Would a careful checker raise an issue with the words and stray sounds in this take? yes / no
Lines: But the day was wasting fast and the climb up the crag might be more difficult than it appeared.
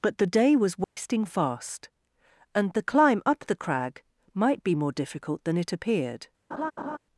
yes